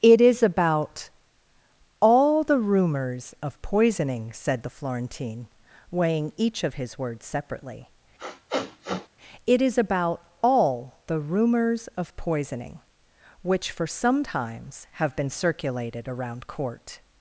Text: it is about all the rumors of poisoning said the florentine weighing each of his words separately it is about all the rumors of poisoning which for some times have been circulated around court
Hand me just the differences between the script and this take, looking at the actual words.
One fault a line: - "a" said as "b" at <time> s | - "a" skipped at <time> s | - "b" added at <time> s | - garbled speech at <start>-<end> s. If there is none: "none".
none